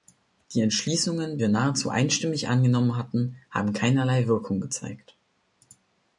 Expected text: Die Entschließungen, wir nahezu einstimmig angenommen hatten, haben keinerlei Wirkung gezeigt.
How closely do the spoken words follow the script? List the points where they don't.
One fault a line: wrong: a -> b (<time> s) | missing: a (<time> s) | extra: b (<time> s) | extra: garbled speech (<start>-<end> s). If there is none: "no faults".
no faults